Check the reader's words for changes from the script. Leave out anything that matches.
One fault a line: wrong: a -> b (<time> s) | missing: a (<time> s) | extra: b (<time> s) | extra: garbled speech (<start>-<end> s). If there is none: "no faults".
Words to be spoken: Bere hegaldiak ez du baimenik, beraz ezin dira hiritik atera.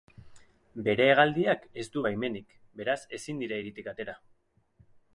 no faults